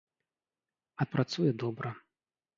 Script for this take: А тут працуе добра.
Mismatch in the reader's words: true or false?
true